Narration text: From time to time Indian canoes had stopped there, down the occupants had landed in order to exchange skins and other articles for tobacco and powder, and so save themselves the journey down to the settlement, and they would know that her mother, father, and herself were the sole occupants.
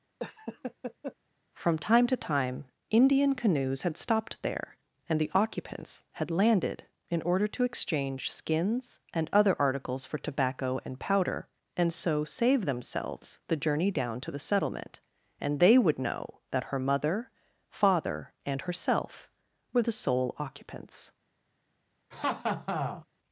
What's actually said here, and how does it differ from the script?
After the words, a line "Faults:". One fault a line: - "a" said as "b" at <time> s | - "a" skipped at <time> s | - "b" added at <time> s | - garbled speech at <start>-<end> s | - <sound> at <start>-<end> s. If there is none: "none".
From time to time Indian canoes had stopped there, and the occupants had landed in order to exchange skins and other articles for tobacco and powder, and so save themselves the journey down to the settlement, and they would know that her mother, father, and herself were the sole occupants.
Faults:
- laugh at 0.2-1.2 s
- "down" said as "and" at 5.1 s
- laugh at 22.1-23.1 s